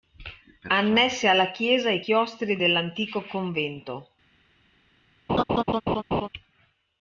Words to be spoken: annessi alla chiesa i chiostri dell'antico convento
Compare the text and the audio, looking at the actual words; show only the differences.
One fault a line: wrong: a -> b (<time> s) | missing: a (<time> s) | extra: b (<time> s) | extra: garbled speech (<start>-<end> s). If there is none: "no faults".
no faults